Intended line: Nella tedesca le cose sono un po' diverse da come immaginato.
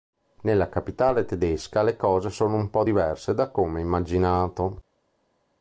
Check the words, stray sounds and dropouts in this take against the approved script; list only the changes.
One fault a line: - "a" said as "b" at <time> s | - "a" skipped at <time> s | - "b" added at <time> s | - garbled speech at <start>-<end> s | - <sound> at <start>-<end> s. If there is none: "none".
- "capitale" added at 0.7 s